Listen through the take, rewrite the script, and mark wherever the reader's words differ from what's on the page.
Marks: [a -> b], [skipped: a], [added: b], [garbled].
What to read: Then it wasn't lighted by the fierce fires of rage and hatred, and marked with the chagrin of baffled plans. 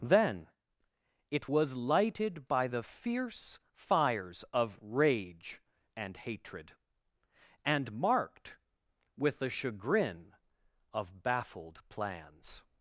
Then it [wasn't -> was] lighted by the fierce fires of rage and hatred, and marked with the chagrin of baffled plans.